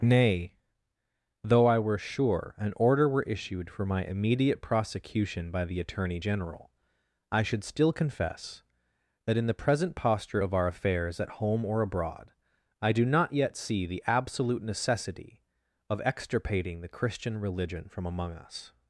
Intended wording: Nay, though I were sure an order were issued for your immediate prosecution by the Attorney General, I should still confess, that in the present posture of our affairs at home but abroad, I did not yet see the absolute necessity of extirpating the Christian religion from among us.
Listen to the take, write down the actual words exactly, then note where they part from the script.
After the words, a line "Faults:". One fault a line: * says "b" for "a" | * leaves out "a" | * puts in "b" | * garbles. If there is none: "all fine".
Nay, though I were sure an order were issued for my immediate prosecution by the Attorney General, I should still confess, that in the present posture of our affairs at home or abroad, I do not yet see the absolute necessity of extirpating the Christian religion from among us.
Faults:
* says "my" for "your"
* says "or" for "but"
* says "do" for "did"